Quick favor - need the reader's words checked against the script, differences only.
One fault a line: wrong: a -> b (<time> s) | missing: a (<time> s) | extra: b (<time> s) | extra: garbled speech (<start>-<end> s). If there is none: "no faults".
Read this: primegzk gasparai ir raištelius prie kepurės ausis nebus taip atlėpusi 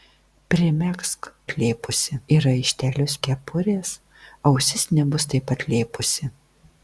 wrong: gasparai -> atlėpusi (1.5 s)
missing: prie (3.1 s)